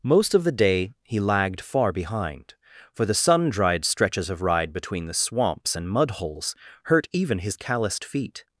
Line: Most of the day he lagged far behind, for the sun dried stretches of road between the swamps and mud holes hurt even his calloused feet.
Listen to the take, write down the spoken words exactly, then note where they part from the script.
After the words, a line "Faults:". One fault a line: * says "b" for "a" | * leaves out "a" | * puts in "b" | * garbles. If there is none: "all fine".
Most of the day he lagged far behind, for the sun dried stretches of ride between the swamps and mud holes hurt even his calloused feet.
Faults:
* says "ride" for "road"